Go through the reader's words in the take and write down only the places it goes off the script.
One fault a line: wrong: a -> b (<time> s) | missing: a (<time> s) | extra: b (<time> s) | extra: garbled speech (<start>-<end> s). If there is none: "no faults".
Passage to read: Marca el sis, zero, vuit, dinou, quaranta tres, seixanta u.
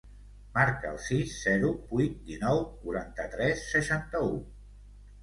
no faults